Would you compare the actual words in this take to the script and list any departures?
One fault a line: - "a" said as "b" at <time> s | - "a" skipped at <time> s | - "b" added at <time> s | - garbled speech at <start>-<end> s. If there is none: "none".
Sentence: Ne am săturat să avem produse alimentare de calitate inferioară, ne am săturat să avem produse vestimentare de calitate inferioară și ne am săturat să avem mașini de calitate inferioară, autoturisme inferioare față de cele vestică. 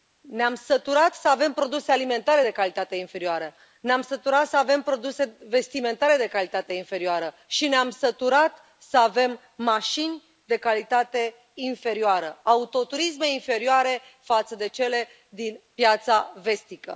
- "din piața" added at 15.3 s